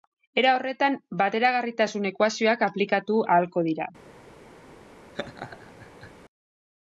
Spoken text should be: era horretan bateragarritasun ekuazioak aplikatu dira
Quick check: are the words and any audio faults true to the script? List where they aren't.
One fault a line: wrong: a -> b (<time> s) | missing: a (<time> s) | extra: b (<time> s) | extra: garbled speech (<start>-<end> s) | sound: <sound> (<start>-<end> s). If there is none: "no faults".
extra: ahalko (3.4 s)
sound: laugh (5.1-6.1 s)